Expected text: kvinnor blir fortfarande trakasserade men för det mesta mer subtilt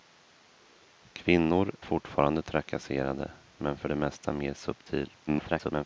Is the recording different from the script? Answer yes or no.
yes